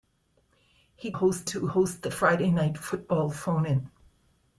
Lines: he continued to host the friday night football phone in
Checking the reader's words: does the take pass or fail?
fail